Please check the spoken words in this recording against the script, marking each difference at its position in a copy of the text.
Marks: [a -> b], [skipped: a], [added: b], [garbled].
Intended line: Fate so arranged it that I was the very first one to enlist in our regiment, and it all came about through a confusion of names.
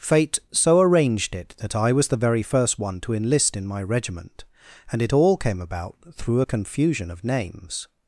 Fate so arranged it that I was the very first one to enlist in [our -> my] regiment, and it all came about through a confusion of names.